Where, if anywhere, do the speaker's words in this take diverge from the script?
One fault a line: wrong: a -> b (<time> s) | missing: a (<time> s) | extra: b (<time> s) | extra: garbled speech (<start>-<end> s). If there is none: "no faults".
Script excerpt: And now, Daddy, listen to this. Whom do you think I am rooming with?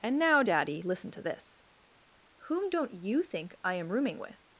wrong: do -> don't (2.7 s)